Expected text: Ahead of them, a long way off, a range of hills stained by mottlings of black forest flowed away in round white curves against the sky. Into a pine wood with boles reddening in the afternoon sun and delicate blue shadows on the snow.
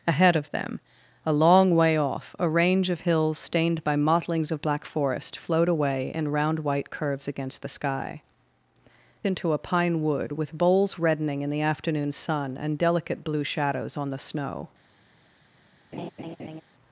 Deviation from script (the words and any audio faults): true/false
true